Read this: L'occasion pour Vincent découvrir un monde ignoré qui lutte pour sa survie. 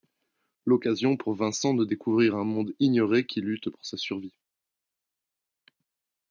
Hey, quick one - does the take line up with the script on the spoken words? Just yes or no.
no